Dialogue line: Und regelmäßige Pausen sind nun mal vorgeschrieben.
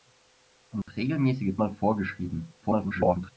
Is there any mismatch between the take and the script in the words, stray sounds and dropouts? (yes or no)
yes